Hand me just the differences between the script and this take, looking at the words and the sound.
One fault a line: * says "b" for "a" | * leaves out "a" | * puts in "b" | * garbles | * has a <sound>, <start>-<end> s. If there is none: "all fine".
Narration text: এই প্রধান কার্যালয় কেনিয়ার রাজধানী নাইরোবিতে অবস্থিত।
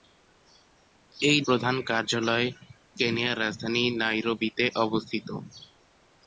all fine